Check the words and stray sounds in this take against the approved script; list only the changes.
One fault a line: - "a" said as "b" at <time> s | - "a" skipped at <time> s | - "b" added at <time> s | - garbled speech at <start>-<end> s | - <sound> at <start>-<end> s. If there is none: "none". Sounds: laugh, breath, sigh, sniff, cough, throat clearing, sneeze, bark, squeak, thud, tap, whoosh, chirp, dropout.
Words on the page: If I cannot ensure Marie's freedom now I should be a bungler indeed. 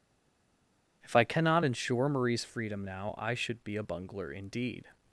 none